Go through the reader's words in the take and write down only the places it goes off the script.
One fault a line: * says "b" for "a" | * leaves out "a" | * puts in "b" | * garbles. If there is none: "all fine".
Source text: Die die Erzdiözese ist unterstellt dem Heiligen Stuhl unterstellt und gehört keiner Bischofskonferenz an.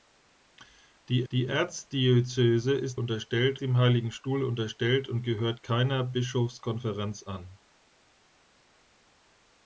all fine